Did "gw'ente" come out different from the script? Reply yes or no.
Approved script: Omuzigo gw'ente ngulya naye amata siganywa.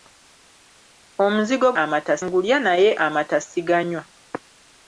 yes